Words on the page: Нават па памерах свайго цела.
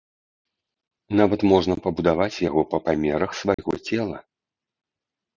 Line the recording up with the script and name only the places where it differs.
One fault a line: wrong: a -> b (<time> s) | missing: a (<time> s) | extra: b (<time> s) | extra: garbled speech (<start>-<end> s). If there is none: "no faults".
extra: можна пабудаваць яго (1.5 s)